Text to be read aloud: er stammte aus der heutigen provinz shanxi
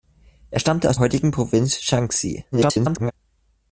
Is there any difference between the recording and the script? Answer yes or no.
yes